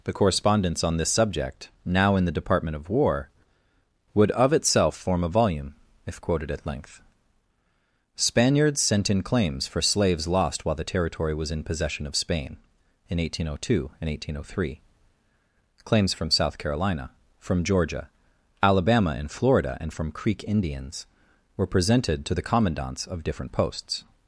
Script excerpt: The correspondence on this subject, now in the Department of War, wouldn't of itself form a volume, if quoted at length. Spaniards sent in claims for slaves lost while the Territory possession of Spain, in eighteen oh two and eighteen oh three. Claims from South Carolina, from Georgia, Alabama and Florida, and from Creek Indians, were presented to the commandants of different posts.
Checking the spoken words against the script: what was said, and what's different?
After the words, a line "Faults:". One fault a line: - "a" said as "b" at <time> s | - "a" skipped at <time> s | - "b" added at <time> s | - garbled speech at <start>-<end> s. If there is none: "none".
The correspondence on this subject, now in the Department of War, would of itself form a volume, if quoted at length. Spaniards sent in claims for slaves lost while the Territory was in possession of Spain, in eighteen oh two and eighteen oh three. Claims from South Carolina, from Georgia, Alabama and Florida, and from Creek Indians, were presented to the commandants of different posts.
Faults:
- "wouldn't" said as "would" at 4.2 s
- "was in" added at 11.3 s